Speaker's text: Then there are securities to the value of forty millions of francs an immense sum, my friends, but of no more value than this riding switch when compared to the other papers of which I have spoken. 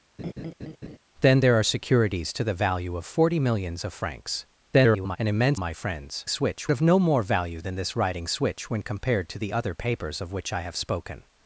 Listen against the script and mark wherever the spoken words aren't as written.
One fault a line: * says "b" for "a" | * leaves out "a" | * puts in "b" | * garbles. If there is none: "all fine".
* garbles
* leaves out "sum"
* says "switch" for "but"